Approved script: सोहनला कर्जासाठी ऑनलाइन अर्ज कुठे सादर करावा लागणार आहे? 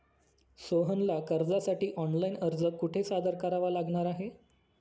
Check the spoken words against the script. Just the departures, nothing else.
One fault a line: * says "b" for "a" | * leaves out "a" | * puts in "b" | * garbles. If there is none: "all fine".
all fine